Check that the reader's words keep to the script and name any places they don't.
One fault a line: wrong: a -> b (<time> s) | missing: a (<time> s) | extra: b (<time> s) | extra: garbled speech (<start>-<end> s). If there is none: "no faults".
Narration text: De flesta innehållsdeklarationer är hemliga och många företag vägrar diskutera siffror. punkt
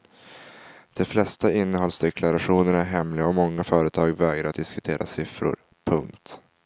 no faults